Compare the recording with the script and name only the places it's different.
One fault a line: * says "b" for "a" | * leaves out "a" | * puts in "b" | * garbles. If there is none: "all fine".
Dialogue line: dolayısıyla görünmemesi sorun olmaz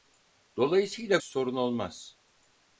* leaves out "görünmemesi"